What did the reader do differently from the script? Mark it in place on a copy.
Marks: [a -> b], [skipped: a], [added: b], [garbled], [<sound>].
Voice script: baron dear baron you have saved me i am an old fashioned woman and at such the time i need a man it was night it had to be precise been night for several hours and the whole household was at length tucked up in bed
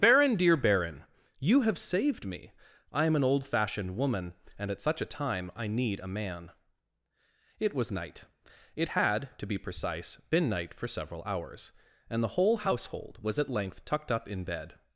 baron dear baron you have saved me i am an old fashioned woman and at such [the -> a] time i need a man it was night it had to be precise been night for several hours and the whole household was at length tucked up in bed